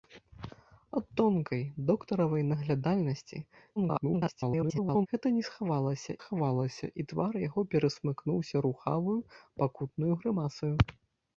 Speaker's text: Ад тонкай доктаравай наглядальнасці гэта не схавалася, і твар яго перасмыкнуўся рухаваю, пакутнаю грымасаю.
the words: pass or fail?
fail